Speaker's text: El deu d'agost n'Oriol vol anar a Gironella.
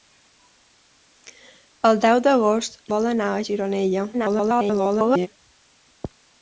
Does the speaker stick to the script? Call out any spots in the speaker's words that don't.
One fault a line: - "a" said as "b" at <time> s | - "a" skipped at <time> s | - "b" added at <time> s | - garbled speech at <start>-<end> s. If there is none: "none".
- "n'Oriol" skipped at 2.8 s
- garbled speech at 4.1-5.3 s